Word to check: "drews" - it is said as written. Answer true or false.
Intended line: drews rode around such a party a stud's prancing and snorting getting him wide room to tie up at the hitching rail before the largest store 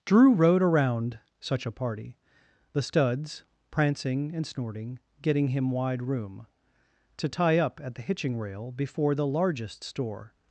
false